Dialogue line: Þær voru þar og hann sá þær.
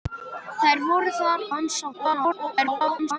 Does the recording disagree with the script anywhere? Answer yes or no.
yes